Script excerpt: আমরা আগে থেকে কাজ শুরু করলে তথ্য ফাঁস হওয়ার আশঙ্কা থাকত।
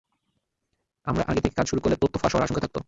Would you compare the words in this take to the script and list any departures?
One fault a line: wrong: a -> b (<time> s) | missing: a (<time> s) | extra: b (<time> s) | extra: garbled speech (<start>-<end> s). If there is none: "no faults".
no faults